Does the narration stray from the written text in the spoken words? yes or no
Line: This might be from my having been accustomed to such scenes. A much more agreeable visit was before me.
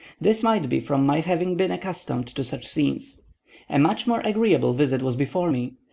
no